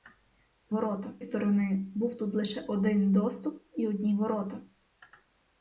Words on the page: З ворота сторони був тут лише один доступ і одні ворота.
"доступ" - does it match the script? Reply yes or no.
yes